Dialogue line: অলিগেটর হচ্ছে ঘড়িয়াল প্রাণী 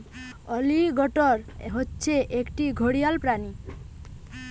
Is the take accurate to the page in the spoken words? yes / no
no